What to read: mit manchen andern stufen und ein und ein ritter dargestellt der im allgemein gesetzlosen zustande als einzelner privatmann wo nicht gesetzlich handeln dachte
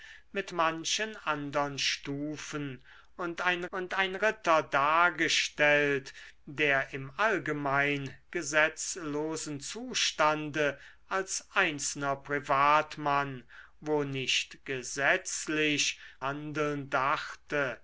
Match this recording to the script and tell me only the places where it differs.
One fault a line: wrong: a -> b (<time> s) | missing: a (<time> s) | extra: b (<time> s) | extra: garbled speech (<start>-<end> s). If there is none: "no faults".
no faults